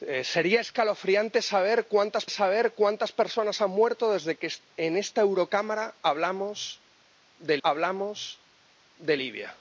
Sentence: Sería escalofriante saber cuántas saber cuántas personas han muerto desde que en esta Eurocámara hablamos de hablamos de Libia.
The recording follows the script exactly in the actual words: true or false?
true